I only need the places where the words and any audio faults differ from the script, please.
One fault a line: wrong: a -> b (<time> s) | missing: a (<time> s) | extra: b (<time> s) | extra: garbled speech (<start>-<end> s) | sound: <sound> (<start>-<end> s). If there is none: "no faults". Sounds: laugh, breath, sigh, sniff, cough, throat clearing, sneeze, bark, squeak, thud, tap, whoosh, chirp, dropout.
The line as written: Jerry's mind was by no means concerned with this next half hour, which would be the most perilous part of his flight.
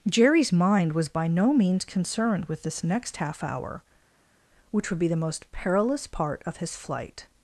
no faults